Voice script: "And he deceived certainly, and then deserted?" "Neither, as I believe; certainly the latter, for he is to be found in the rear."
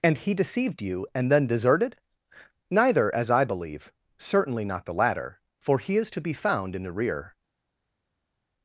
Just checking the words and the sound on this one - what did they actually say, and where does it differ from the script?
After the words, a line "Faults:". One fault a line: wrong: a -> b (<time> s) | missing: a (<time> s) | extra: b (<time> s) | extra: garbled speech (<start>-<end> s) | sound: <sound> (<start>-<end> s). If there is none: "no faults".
"And he deceived you, and then deserted?" "Neither, as I believe; certainly not the latter, for he is to be found in the rear."
Faults:
wrong: certainly -> you (0.8 s)
extra: not (4.7 s)